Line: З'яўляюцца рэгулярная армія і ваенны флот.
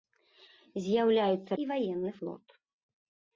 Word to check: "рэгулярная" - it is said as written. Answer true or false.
false